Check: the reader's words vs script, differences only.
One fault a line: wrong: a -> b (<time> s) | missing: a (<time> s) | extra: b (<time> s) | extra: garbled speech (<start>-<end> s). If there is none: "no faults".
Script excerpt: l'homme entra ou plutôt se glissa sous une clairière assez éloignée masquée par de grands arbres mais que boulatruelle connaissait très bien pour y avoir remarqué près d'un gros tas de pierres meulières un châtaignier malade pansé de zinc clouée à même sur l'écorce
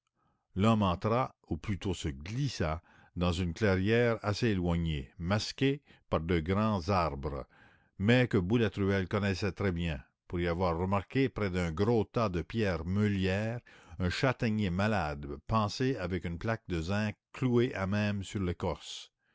wrong: sous -> dans (3.1 s)
extra: avec une plaque (16.0 s)